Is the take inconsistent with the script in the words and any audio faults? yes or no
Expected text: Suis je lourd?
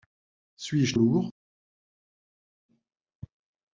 no